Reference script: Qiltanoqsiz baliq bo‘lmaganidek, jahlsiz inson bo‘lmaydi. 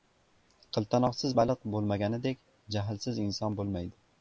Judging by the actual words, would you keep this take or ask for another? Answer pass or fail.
pass